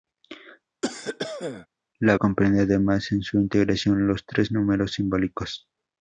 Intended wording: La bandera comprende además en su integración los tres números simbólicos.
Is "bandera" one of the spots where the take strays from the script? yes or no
yes